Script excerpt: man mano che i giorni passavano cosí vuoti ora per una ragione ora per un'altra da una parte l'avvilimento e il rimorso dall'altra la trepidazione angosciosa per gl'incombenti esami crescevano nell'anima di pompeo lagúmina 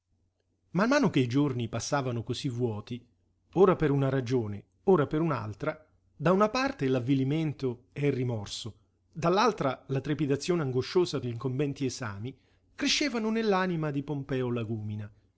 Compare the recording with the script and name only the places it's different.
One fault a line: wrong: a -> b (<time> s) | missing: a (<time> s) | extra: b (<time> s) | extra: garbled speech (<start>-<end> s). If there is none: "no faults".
missing: per (11.2 s)